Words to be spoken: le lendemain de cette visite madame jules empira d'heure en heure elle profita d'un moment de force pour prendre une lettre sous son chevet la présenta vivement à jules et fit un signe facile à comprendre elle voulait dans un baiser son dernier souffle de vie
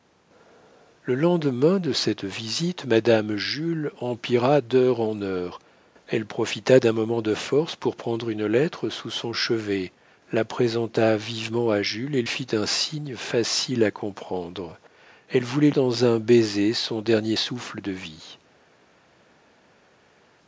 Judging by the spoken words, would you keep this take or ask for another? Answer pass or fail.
pass